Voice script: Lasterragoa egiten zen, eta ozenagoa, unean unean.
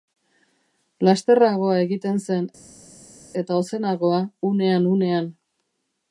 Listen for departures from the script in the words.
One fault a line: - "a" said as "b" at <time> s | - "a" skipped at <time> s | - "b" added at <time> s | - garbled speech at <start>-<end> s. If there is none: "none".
none